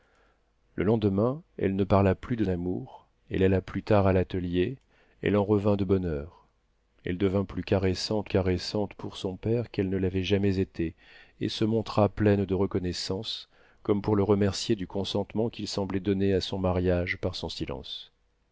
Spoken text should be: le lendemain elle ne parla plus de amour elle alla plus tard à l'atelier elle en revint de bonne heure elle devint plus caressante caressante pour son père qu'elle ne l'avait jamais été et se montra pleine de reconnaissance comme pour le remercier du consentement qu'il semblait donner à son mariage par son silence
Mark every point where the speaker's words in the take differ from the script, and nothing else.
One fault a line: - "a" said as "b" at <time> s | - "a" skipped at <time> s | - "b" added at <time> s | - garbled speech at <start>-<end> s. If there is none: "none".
none